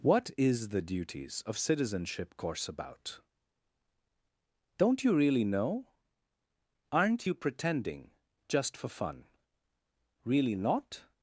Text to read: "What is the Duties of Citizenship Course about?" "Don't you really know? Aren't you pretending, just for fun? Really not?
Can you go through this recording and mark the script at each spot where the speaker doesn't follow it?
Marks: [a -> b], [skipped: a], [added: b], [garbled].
"What is the Duties of Citizenship Course about?" "Don't you really know? Aren't you pretending, just for fun? Really not?